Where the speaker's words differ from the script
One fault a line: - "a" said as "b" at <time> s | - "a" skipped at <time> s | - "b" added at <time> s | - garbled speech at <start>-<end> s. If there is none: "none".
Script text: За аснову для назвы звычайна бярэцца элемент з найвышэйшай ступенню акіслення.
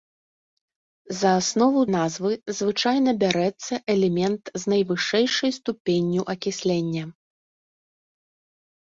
- "для" skipped at 1.8 s